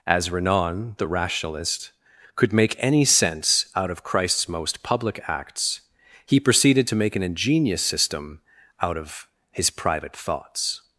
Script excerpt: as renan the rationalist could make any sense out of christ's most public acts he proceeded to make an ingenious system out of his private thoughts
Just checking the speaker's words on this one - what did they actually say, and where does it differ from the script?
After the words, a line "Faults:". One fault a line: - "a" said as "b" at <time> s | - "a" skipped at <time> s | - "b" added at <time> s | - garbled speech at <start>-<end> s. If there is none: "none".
as renan the rationalist could make any sense out of christ's most public acts he proceeded to make an ingenious system out of his private thoughts
Faults:
none